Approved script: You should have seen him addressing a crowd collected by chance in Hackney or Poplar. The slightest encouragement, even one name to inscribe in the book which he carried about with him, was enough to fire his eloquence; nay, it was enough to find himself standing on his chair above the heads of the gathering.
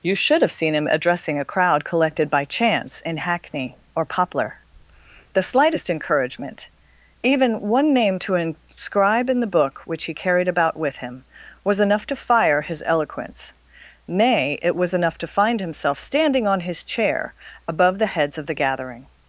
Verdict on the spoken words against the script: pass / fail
pass